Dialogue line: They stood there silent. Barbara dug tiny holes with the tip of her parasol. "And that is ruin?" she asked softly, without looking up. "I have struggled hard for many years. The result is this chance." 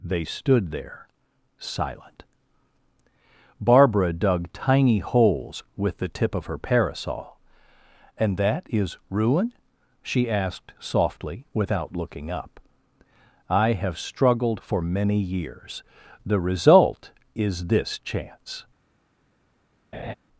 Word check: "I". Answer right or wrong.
right